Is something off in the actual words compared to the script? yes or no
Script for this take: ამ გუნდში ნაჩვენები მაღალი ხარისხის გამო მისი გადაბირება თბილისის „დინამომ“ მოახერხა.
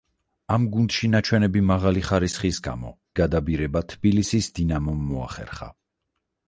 yes